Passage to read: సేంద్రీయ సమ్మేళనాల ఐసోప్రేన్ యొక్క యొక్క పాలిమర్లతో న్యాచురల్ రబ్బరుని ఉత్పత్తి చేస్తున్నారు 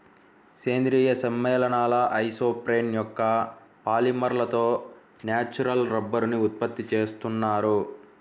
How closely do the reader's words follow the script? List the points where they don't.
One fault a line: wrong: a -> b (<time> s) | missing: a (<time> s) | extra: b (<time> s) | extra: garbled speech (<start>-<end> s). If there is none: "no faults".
missing: యొక్క (3.2 s)